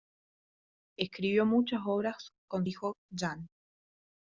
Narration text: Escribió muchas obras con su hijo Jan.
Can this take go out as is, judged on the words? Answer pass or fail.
fail